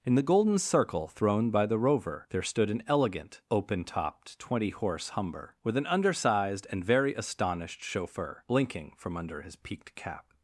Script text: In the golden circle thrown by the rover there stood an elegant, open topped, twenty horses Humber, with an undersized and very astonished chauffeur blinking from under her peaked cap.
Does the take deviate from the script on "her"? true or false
true